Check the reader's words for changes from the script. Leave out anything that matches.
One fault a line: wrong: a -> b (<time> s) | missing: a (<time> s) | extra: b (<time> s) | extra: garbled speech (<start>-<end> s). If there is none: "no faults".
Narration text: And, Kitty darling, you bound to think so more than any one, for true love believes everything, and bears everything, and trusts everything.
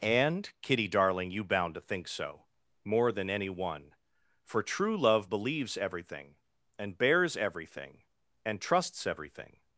no faults